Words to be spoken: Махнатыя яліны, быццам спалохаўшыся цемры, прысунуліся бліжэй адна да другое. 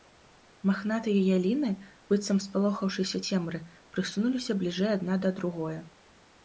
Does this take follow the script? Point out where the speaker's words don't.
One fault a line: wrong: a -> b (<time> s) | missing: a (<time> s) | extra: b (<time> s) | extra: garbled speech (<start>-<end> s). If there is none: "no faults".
no faults